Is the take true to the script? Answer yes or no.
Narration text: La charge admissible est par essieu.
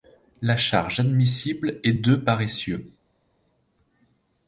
no